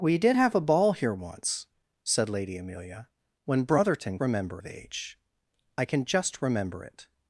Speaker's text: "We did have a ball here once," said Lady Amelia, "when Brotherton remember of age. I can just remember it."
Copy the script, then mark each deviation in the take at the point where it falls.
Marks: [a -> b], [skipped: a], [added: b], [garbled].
"We did have a ball here once," said Lady Amelia, "when Brotherton remember of age. I can just remember it."